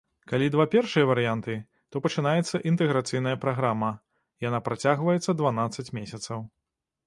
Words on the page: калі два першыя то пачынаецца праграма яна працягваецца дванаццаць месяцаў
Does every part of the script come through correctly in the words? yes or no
no